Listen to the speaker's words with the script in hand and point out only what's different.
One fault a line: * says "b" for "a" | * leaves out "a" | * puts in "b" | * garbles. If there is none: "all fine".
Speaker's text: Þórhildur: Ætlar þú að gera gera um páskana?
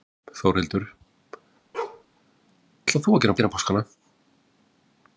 all fine